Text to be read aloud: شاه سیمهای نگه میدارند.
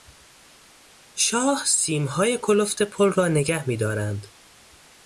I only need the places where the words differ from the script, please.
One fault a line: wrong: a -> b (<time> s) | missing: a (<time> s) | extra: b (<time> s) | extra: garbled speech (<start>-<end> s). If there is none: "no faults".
extra: کلفت پل را (2.4 s)